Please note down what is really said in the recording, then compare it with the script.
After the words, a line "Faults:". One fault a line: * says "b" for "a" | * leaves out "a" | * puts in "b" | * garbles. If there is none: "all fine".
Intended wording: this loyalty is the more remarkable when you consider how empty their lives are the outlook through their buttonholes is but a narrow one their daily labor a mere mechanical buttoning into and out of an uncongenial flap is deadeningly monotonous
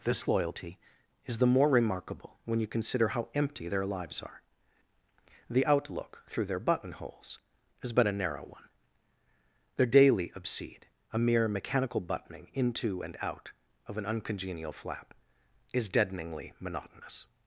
this loyalty is the more remarkable when you consider how empty their lives are the outlook through their buttonholes is but a narrow one their daily obsede a mere mechanical buttoning into and out of an uncongenial flap is deadeningly monotonous
Faults:
* says "obsede" for "labor"